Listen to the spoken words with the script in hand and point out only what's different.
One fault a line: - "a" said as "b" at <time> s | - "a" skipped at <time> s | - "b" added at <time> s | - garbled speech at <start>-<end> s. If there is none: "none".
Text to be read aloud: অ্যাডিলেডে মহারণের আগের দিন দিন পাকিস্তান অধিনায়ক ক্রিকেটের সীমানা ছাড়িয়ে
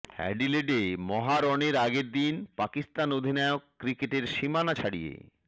- "দিন" skipped at 2.3 s